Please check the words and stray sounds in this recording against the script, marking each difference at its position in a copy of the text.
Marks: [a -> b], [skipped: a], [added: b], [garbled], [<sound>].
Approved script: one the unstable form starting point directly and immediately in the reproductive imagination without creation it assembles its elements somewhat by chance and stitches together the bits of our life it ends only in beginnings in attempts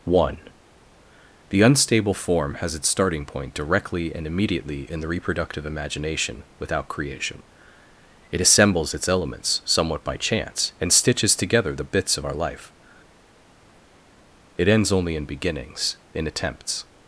one the unstable form [added: has its] starting point directly and immediately in the reproductive imagination without creation it assembles its elements somewhat by chance and stitches together the bits of our life it ends only in beginnings in attempts